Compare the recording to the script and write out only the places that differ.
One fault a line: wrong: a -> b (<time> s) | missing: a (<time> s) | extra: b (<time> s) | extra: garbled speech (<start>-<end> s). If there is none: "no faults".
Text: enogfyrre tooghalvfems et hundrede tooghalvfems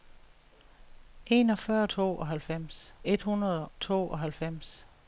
no faults